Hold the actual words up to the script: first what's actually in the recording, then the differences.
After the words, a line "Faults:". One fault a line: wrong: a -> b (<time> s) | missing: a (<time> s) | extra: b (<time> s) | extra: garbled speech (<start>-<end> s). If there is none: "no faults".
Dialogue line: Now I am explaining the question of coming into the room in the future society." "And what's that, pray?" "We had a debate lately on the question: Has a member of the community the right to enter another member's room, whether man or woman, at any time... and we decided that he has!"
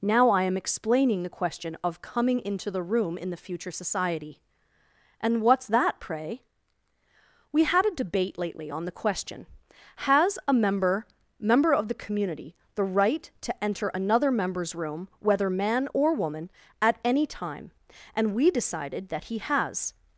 Now I am explaining the question of coming into the room in the future society." "And what's that, pray?" "We had a debate lately on the question: Has a member member of the community the right to enter another member's room, whether man or woman, at any time... and we decided that he has!"
Faults:
extra: member (11.4 s)